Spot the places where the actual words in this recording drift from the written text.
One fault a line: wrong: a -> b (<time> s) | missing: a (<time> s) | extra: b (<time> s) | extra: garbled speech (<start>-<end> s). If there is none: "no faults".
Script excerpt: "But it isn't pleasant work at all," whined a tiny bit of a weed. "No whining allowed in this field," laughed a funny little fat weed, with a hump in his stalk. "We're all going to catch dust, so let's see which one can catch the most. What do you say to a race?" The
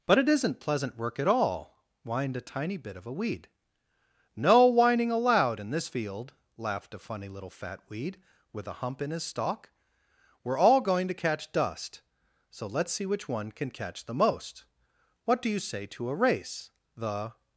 no faults